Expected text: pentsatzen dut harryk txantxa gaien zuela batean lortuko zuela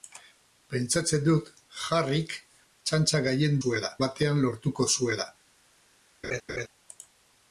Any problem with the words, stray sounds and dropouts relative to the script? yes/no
yes